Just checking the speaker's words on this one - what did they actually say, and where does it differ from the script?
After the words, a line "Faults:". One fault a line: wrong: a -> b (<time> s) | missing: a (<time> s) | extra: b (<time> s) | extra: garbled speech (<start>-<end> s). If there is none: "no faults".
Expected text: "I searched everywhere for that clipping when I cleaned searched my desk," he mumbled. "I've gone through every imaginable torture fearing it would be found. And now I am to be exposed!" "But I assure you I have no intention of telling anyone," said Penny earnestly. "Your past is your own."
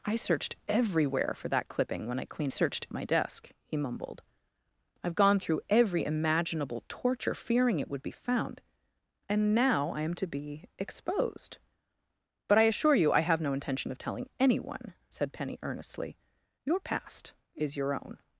"I searched everywhere for that clipping when I cleaned searched my desk," he mumbled. "I've gone through every imaginable torture fearing it would be found. And now I am to be exposed!" "But I assure you I have no intention of telling anyone," said Penny earnestly. "Your past is your own."
Faults:
no faults